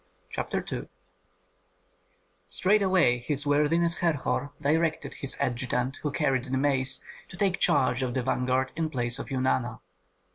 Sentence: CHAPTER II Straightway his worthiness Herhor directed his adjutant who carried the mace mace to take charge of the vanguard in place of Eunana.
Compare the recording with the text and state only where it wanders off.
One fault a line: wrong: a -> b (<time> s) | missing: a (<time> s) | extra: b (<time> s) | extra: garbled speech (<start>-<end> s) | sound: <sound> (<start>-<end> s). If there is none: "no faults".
missing: mace (7.0 s)